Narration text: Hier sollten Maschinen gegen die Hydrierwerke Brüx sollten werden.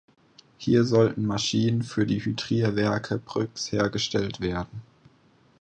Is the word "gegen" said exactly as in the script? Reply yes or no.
no